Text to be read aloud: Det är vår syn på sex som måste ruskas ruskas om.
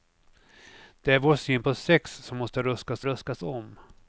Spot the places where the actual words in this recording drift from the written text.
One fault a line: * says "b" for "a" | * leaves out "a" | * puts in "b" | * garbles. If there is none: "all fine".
all fine